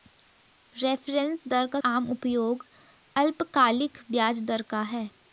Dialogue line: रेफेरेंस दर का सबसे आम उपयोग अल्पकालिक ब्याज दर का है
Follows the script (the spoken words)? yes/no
no